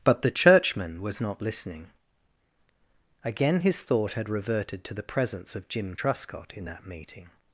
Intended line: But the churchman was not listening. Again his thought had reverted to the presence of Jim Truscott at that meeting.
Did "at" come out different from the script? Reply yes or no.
yes